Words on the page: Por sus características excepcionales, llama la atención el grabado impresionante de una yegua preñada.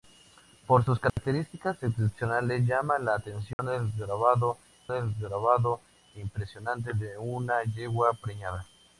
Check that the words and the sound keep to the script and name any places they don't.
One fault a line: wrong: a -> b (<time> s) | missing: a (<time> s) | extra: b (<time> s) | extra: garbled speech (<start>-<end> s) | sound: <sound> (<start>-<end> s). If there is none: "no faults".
sound: dropout (1.1-1.2 s)
sound: dropout (3.5-3.6 s)
extra: el grabado (4.9 s)